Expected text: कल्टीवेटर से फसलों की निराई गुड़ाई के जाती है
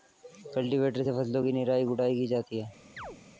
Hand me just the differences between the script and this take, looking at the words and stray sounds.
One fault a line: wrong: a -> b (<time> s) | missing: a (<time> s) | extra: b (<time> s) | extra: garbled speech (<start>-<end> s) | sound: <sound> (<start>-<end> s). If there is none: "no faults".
wrong: के -> की (2.2 s)
sound: chirp (3.0-3.2 s)